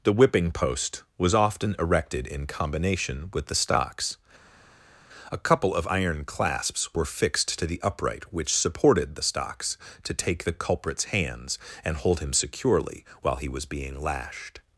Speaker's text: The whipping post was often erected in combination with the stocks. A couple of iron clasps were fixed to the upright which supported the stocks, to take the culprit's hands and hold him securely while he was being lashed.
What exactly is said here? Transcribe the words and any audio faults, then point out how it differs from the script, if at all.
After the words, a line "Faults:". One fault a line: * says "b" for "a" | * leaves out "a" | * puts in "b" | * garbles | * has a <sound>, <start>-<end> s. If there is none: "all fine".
The whipping post was often erected in combination with the stocks. A couple of iron clasps were fixed to the upright which supported the stocks, to take the culprit's hands and hold him securely while he was being lashed.
Faults:
all fine